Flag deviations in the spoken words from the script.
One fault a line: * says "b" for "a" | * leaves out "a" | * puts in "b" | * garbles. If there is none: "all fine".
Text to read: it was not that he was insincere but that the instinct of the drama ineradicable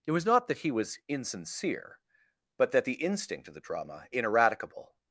all fine